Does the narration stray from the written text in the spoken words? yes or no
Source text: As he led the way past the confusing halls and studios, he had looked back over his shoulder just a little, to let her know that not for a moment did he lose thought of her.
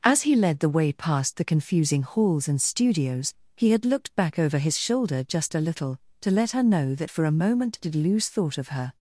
yes